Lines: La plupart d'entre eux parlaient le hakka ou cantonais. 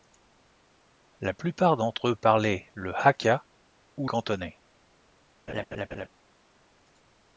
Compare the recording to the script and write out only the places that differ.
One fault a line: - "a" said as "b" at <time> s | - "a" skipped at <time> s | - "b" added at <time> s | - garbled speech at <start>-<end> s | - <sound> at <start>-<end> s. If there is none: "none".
- laugh at 5.5-6.1 s